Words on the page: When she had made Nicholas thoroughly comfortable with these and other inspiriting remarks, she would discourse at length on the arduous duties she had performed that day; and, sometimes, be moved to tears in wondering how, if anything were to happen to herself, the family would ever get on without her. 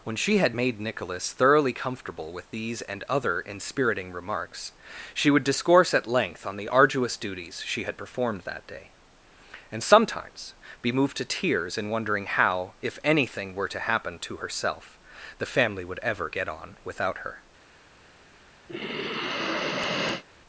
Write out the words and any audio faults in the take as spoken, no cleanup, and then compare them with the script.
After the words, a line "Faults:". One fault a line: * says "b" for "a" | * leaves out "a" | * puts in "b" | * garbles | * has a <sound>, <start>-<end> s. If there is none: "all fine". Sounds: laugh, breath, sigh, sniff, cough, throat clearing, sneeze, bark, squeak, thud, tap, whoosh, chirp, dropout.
When she had made Nicholas thoroughly comfortable with these and other inspiriting remarks, she would discourse at length on the arduous duties she had performed that day; and, sometimes, be moved to tears in wondering how, if anything were to happen to herself, the family would ever get on without her.
Faults:
* has a sigh, 18.7-20.2 s